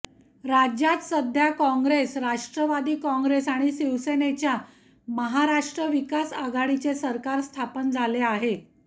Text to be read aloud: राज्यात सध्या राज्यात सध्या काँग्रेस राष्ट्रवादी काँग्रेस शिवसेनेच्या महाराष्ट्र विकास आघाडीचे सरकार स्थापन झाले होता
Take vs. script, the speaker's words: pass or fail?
fail